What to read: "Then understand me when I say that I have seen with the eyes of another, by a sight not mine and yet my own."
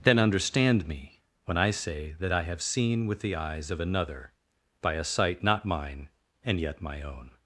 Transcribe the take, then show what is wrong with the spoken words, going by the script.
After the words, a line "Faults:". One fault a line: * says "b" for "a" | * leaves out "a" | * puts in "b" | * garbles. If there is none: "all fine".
"Then understand me when I say that I have seen with the eyes of another, by a sight not mine and yet my own."
Faults:
all fine